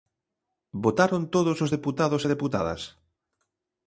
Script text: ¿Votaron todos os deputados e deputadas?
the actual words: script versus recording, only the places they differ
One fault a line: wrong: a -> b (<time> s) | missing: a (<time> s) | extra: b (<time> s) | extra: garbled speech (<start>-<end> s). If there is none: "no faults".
no faults